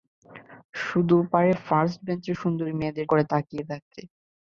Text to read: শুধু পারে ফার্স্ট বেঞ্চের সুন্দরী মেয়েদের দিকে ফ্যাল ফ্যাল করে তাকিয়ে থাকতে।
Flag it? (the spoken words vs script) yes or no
yes